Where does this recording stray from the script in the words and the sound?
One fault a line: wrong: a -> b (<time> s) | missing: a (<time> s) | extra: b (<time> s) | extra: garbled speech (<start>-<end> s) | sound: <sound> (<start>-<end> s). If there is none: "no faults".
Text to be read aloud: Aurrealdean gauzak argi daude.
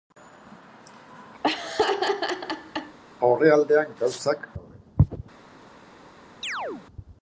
sound: laugh (1.4-3.0 s)
missing: argi (4.5 s)
sound: chirp (6.4-6.9 s)